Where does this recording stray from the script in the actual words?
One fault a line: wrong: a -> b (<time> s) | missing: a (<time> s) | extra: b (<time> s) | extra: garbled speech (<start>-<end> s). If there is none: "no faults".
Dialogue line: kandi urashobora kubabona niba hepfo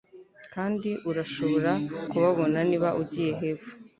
extra: ugiye (3.0 s)